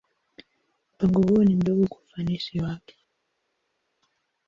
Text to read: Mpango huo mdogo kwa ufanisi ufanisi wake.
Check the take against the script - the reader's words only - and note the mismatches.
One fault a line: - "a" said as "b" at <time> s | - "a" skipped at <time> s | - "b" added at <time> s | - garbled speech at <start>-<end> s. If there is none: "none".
- "ni" added at 1.4 s
- "ufanisi" skipped at 2.6 s